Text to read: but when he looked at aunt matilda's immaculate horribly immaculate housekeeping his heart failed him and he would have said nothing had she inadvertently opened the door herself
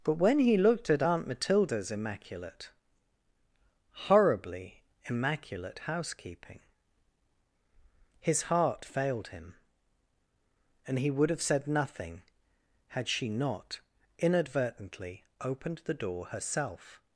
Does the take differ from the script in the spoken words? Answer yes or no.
yes